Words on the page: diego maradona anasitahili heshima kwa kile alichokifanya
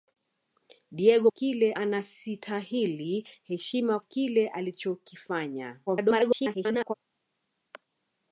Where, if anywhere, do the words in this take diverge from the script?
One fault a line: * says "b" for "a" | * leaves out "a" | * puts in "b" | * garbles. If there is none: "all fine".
* says "kile" for "maradona"
* leaves out "kwa"
* garbles